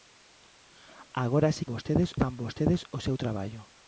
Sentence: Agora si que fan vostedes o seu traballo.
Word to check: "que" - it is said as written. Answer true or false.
false